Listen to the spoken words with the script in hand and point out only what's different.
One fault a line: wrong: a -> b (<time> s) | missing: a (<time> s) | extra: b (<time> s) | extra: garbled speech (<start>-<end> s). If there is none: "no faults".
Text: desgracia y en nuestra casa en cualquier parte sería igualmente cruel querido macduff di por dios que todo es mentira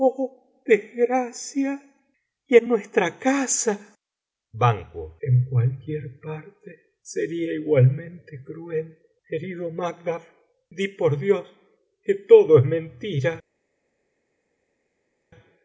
no faults